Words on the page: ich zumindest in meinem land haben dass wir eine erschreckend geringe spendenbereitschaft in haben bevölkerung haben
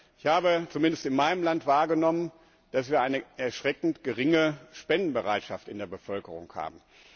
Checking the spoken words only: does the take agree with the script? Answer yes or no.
no